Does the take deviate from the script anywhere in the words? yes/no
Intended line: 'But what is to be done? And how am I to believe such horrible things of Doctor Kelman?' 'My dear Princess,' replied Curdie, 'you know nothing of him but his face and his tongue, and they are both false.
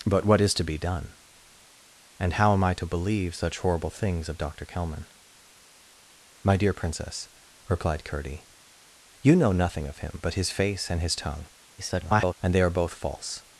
yes